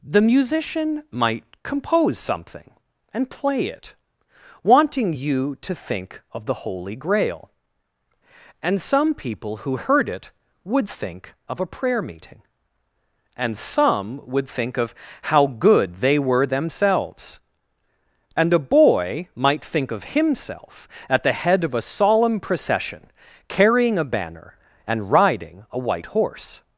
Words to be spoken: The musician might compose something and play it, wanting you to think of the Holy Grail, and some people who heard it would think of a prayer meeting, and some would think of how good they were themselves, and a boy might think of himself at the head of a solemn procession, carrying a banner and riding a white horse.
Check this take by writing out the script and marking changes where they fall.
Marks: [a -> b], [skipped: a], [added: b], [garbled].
The musician might compose something and play it, wanting you to think of the Holy Grail, and some people who heard it would think of a prayer meeting, and some would think of how good they were themselves, and a boy might think of himself at the head of a solemn procession, carrying a banner and riding a white horse.